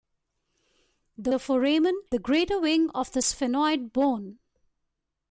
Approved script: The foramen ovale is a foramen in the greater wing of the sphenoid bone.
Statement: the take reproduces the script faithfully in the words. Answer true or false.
false